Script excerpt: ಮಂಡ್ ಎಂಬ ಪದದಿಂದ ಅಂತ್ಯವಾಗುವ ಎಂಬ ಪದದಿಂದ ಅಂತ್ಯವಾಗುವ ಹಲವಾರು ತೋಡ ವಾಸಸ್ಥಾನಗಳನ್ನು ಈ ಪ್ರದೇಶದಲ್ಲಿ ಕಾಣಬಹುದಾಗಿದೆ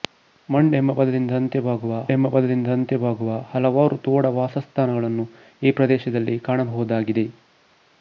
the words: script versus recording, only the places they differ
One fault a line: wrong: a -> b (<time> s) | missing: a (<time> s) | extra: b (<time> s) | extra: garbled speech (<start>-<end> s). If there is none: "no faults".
no faults